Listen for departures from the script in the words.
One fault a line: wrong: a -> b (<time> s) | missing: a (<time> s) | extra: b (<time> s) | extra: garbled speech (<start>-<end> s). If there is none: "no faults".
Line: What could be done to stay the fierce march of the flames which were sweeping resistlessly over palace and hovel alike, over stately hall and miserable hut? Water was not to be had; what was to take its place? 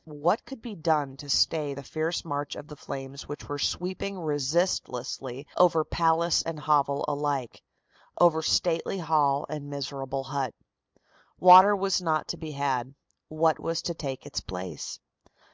no faults